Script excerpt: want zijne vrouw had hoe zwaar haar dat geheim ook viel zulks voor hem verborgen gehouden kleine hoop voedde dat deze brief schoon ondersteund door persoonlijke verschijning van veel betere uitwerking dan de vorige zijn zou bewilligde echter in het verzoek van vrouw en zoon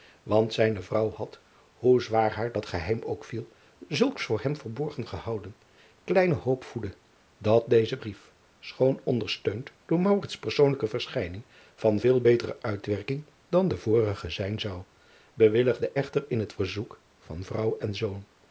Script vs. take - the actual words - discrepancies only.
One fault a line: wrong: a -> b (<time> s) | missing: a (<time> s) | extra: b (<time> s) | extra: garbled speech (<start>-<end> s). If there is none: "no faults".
no faults